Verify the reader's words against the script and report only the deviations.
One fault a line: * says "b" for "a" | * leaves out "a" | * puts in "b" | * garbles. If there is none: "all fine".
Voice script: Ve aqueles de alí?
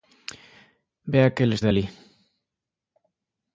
all fine